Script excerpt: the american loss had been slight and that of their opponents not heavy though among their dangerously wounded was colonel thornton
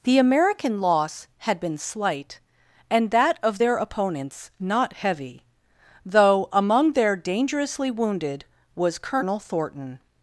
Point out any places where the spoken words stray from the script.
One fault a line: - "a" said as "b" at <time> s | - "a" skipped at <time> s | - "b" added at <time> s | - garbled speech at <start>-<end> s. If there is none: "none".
none